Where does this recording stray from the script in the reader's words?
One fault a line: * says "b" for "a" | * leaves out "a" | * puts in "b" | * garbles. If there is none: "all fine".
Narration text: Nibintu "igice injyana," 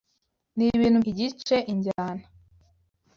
all fine